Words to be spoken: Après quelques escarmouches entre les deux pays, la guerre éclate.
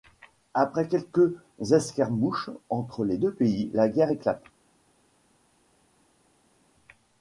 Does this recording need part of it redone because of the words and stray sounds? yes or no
no